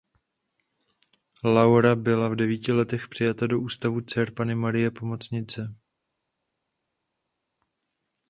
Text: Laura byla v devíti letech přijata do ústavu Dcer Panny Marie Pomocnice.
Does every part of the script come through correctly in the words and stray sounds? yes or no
yes